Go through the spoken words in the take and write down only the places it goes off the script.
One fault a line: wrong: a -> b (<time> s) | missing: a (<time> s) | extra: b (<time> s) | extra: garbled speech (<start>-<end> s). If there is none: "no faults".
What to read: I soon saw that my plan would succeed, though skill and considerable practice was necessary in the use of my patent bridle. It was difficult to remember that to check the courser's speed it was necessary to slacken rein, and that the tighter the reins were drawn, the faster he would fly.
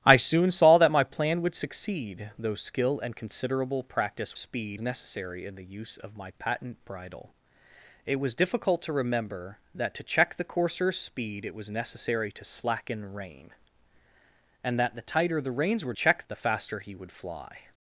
wrong: was -> speed (4.3 s)
wrong: drawn -> check (15.9 s)